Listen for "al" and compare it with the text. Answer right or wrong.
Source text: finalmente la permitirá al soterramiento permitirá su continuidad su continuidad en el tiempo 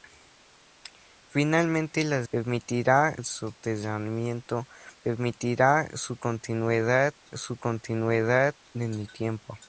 right